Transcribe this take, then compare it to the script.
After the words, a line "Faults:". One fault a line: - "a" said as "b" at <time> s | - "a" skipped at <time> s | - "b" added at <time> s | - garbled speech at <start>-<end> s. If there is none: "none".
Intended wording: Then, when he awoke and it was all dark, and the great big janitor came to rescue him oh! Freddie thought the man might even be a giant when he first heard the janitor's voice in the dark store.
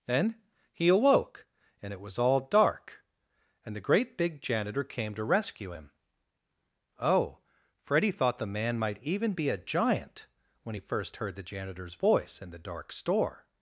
Then, he awoke and it was all dark, and the great big janitor came to rescue him oh! Freddie thought the man might even be a giant when he first heard the janitor's voice in the dark store.
Faults:
- "when" skipped at 0.4 s